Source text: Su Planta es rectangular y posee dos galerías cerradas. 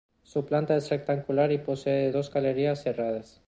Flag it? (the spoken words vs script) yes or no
no